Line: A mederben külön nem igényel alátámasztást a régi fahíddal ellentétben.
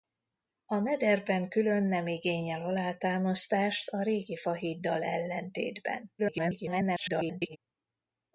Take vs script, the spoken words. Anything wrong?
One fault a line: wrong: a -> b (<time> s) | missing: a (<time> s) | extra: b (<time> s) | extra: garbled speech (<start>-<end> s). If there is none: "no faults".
extra: garbled speech (6.2-7.6 s)